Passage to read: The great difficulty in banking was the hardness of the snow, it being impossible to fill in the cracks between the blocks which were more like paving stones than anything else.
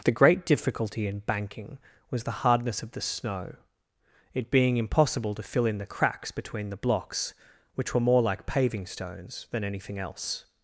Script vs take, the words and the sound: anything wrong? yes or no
no